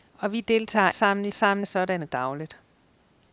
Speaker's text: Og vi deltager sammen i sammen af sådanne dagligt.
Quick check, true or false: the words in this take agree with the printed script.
true